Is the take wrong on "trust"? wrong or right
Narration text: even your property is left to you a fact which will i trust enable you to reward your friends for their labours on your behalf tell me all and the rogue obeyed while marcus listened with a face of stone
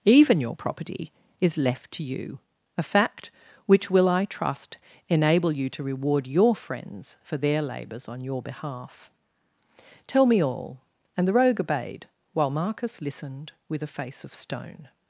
right